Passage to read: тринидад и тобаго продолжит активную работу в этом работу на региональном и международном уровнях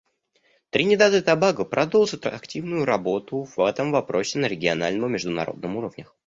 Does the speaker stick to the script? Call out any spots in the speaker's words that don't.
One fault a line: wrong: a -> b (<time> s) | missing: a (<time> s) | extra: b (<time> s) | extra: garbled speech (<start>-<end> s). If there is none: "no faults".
wrong: работу -> вопросе (3.9 s)